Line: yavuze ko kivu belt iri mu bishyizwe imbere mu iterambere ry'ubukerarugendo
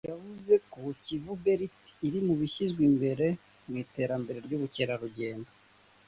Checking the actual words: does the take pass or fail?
pass